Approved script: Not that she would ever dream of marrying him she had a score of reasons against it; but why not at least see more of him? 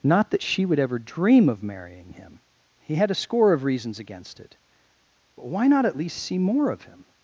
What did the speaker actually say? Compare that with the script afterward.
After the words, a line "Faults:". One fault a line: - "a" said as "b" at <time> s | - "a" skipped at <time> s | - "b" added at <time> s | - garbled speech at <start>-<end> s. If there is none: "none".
Not that she would ever dream of marrying him he had a score of reasons against it; but why not at least see more of him?
Faults:
- "she" said as "he" at 2.9 s